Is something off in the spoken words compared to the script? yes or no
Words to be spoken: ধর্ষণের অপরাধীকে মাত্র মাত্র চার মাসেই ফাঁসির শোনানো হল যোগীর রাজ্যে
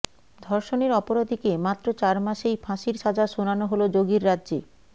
yes